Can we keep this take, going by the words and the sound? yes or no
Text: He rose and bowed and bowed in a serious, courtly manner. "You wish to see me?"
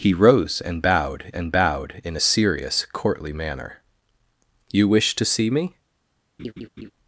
no